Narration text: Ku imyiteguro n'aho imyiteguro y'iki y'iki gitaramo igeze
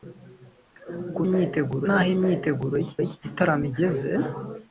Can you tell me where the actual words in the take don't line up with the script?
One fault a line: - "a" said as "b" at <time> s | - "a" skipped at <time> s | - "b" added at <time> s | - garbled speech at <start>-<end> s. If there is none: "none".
none